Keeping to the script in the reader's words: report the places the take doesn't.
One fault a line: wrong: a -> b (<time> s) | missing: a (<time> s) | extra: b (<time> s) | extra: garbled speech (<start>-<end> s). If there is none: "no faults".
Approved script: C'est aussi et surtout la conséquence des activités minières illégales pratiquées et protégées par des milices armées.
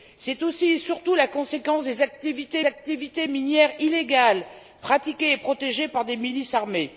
extra: activités (2.6 s)